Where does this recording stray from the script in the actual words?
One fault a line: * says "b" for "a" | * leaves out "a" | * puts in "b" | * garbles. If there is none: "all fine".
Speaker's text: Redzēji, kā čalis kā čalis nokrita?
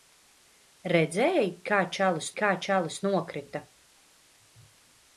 all fine